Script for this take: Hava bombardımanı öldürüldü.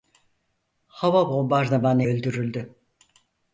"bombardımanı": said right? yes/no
yes